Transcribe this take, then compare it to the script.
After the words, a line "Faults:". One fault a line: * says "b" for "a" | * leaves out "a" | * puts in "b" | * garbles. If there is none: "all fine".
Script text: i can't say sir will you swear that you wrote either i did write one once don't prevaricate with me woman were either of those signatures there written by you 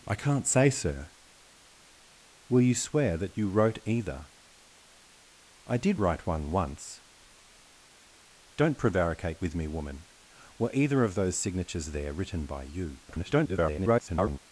i can't say sir will you swear that you wrote either i did write one once don't prevaricate with me woman were either of those signatures there written by you [garbled]
Faults:
* garbles